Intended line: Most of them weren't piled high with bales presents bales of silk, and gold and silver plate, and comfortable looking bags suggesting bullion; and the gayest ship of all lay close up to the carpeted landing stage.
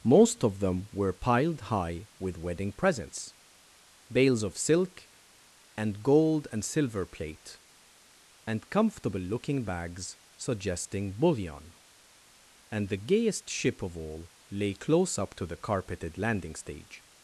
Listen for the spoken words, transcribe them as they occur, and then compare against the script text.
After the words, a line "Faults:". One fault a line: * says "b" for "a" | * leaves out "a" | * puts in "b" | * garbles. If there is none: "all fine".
Most of them were piled high with wedding presents bales of silk, and gold and silver plate, and comfortable looking bags suggesting bullion; and the gayest ship of all lay close up to the carpeted landing stage.
Faults:
* says "were" for "weren't"
* says "wedding" for "bales"